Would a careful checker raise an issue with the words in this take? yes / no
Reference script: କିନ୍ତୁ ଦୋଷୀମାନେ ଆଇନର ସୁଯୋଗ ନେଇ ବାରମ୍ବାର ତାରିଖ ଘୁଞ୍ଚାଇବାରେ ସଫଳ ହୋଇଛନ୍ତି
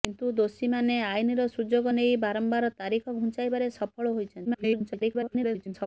yes